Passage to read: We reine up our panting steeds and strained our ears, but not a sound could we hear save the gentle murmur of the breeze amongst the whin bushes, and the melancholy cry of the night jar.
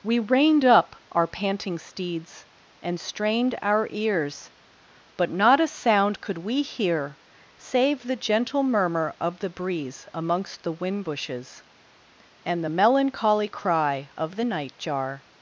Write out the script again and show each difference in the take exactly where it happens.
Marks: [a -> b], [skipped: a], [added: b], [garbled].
We [reine -> reined] up our panting steeds and strained our ears, but not a sound could we hear save the gentle murmur of the breeze amongst the whin bushes, and the melancholy cry of the night jar.